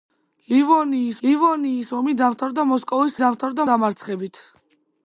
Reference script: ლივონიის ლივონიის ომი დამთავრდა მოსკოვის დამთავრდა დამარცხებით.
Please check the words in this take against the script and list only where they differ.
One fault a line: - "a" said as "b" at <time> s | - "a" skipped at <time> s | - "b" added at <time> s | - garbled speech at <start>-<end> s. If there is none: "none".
none